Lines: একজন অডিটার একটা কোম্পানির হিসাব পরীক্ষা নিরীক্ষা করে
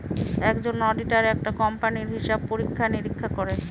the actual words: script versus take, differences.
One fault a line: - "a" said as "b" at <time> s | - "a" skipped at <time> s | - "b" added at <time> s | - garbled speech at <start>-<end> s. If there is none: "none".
none